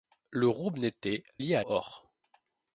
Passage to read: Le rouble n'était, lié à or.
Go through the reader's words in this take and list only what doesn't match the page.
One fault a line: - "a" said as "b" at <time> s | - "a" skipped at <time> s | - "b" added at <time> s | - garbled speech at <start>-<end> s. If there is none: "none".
none